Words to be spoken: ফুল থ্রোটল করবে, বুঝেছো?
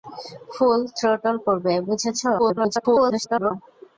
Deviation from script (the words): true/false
true